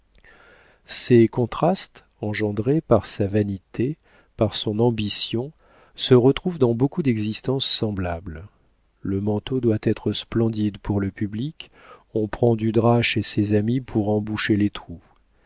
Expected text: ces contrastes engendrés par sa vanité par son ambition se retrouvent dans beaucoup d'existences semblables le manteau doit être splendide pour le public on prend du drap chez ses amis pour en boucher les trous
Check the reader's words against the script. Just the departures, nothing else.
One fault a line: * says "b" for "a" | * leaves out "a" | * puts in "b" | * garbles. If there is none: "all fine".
all fine